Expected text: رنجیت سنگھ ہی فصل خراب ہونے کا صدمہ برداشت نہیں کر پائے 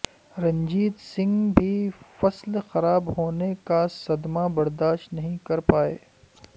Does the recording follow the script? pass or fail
fail